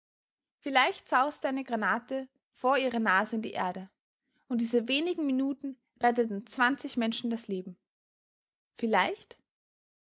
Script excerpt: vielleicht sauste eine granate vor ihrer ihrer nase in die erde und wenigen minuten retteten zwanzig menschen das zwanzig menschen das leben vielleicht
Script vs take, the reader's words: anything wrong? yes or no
yes